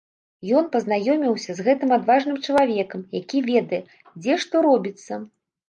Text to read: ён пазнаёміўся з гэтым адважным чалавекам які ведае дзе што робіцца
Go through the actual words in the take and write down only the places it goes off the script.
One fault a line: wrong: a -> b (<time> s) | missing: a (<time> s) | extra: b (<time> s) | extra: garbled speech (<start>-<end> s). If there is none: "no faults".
no faults